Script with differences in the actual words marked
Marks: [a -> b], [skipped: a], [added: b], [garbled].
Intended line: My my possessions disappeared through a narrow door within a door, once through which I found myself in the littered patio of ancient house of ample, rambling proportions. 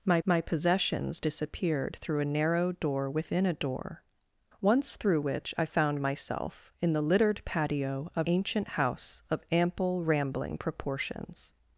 My my possessions disappeared through a narrow door within a door, once through which I found myself in the littered patio of ancient house of ample, rambling proportions.